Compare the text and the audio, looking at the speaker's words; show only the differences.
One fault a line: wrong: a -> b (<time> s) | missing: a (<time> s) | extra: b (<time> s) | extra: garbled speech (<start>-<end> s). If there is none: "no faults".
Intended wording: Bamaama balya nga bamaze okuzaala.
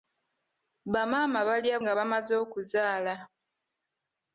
no faults